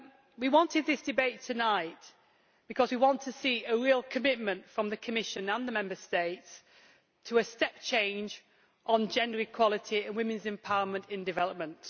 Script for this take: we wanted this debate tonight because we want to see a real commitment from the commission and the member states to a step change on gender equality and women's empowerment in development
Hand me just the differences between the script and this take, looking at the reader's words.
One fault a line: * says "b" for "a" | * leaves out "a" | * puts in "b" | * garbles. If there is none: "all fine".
all fine